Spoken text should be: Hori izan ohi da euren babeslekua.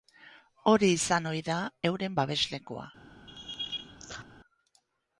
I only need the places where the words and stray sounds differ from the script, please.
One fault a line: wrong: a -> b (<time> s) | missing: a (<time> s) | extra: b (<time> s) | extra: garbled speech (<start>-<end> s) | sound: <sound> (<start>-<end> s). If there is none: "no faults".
sound: laugh (3.3-4.3 s)